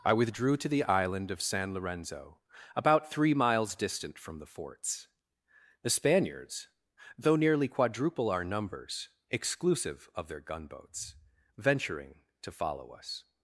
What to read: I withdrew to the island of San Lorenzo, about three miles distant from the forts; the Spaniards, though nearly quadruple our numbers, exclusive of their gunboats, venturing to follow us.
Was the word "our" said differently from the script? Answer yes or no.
no